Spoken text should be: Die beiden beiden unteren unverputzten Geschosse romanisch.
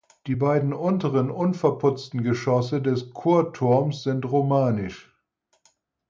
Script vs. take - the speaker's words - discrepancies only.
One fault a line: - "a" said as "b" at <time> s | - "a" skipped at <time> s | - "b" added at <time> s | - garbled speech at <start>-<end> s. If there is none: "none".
- "beiden" skipped at 0.7 s
- "des Chorturms sind" added at 2.8 s